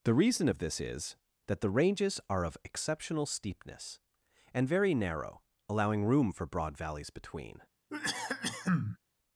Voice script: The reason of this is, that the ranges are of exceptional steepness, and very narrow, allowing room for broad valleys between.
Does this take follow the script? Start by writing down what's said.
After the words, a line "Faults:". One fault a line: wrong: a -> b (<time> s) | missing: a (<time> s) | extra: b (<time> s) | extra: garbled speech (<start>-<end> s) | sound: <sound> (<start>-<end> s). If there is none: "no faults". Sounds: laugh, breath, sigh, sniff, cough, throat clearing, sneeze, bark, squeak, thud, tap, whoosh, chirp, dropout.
The reason of this is, that the ranges are of exceptional steepness, and very narrow, allowing room for broad valleys between.
Faults:
sound: cough (7.9-9.0 s)